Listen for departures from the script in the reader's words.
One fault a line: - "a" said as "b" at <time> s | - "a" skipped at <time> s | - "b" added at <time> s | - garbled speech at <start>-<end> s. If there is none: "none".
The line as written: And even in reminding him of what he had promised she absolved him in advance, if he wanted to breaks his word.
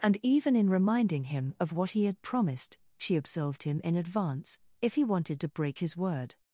- "breaks" said as "break" at 5.5 s